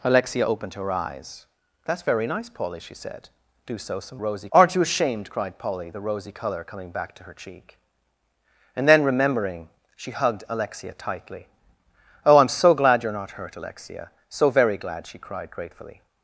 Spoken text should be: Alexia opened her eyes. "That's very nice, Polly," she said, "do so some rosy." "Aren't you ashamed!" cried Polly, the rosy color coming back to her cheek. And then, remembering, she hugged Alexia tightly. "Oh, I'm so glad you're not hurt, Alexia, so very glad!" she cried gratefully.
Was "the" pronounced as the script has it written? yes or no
yes